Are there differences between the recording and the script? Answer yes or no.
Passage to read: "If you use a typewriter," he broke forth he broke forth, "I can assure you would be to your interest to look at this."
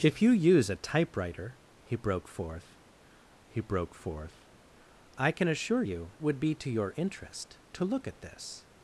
no